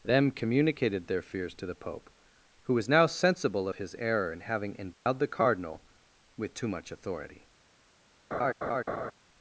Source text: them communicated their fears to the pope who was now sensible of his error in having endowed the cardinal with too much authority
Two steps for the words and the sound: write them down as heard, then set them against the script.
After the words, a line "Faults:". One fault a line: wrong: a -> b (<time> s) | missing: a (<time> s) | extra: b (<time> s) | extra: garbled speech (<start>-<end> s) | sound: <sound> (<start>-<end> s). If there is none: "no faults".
them communicated their fears to the pope who was now sensible of his error in having endowed the cardinal with too much authority
Faults:
sound: dropout (4.9-5.1 s)
sound: laugh (8.3-9.1 s)